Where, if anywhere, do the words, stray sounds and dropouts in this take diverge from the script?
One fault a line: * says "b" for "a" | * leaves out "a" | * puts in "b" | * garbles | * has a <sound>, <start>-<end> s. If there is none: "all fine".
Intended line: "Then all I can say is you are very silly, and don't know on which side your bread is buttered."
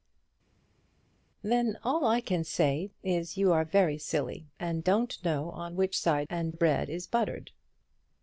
* says "and" for "your"